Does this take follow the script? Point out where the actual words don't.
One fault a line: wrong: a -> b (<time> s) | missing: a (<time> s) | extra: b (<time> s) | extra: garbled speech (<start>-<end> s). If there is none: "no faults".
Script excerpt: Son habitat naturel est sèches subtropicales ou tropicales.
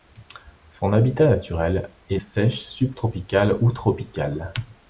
no faults